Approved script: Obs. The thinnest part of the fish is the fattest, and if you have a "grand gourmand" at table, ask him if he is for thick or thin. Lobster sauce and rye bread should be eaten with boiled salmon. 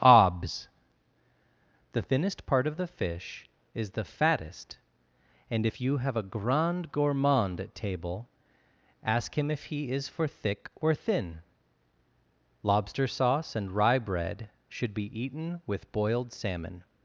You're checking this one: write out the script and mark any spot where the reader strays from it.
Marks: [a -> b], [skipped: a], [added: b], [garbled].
Obs. The thinnest part of the fish is the fattest, and if you have a "grand gourmand" at table, ask him if he is for thick or thin. Lobster sauce and rye bread should be eaten with boiled salmon.